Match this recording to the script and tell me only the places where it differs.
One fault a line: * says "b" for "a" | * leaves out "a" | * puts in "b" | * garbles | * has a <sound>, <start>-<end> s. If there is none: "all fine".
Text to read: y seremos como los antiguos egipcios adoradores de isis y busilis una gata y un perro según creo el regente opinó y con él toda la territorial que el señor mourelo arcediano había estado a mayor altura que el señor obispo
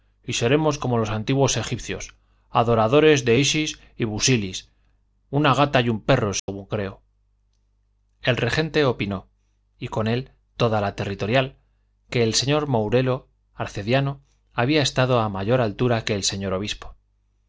* has a dropout, 6.4-6.5 s